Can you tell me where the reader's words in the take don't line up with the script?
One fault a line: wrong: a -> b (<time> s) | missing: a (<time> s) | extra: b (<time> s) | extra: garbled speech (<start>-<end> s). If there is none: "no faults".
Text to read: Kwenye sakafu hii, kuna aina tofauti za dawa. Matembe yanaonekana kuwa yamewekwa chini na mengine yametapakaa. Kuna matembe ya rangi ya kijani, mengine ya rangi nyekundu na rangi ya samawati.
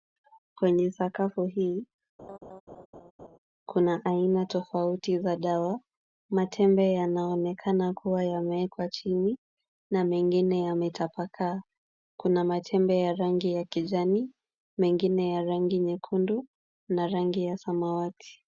no faults